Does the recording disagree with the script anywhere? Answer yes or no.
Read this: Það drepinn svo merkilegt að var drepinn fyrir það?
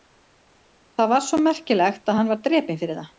yes